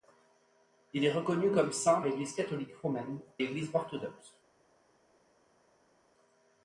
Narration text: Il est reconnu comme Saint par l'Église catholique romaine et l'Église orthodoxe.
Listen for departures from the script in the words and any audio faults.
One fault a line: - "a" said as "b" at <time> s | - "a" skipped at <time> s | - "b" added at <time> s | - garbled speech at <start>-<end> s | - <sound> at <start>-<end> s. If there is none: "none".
- "par" skipped at 2.0 s
- "et" skipped at 3.2 s